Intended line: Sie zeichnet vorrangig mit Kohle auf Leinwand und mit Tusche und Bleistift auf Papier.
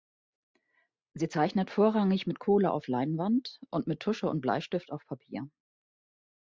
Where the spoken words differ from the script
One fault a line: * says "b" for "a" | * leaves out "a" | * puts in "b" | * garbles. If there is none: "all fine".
all fine